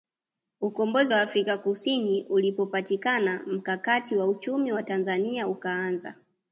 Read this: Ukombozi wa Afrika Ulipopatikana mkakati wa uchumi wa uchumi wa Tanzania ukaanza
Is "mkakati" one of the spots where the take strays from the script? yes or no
no